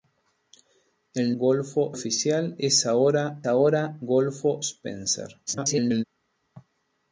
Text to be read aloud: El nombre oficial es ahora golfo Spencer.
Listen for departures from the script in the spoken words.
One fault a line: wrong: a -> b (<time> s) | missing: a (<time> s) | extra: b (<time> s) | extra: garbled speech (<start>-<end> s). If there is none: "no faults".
wrong: nombre -> golfo (1.3 s)
extra: ahora (3.5 s)
extra: garbled speech (5.5-6.0 s)